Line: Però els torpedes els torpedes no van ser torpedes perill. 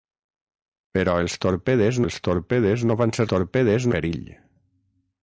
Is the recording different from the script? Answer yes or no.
no